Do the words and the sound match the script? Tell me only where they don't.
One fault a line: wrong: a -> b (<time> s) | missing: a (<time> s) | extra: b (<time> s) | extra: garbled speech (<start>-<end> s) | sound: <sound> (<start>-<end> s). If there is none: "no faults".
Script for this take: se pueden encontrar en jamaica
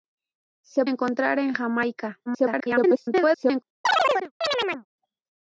missing: pueden (0.9 s)
extra: garbled speech (2.3-3.6 s)
sound: chirp (3.8-4.9 s)